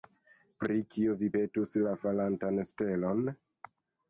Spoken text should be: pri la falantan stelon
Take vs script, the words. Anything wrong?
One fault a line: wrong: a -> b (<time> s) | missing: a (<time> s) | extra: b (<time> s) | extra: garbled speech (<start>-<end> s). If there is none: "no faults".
extra: kio vi petus (0.9 s)